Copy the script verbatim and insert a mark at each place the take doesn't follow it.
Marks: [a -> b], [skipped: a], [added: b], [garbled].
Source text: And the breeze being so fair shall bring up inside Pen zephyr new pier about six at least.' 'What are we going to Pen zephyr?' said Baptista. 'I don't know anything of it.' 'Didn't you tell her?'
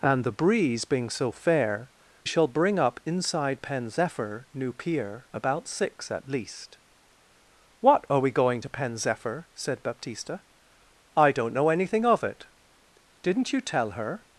And the breeze being so fair shall bring up inside Pen zephyr new pier about six at least.' 'What are we going to Pen zephyr?' said Baptista. 'I don't know anything of it.' 'Didn't you tell her?'